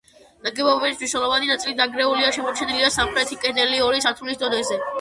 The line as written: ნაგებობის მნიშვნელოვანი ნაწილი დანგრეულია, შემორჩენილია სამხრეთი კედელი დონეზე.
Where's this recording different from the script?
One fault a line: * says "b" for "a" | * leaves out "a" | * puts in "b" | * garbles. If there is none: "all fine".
* puts in "ორი სართულის"